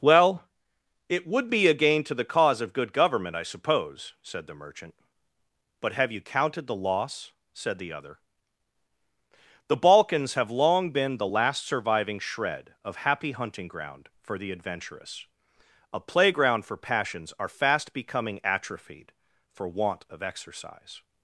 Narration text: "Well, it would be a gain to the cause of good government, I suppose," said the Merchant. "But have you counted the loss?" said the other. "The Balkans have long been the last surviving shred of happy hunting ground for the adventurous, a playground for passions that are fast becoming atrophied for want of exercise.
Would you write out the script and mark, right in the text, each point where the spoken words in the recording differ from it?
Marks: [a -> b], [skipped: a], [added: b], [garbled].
"Well, it would be a gain to the cause of good government, I suppose," said the Merchant. "But have you counted the loss?" said the other. "The Balkans have long been the last surviving shred of happy hunting ground for the adventurous, a playground for passions [skipped: that] are fast becoming atrophied for want of exercise.